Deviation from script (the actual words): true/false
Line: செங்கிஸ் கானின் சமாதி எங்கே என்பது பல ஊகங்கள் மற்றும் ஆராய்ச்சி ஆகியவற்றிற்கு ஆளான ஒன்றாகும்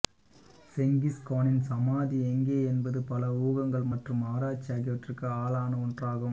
false